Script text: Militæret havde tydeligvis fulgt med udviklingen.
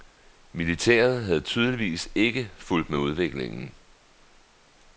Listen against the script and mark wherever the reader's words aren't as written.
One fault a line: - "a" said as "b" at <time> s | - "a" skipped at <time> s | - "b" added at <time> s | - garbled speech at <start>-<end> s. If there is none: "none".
- "ikke" added at 2.1 s